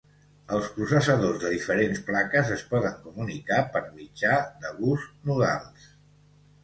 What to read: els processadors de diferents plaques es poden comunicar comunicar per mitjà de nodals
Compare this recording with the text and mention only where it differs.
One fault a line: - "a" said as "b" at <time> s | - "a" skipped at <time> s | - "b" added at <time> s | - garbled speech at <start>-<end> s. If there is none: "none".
- "comunicar" skipped at 3.6 s
- "bus" added at 4.8 s